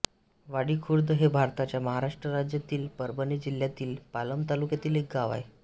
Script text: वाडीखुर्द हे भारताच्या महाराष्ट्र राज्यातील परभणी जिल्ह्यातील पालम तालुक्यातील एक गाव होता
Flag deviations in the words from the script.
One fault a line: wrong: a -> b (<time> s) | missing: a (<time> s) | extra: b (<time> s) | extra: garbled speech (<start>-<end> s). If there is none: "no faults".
wrong: होता -> आहे (5.3 s)